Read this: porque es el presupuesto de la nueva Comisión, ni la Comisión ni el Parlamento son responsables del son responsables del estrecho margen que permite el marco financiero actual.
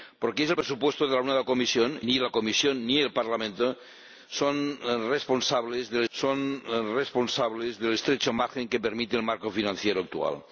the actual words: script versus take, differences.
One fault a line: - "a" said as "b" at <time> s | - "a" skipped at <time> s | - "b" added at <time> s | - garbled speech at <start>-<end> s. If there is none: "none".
none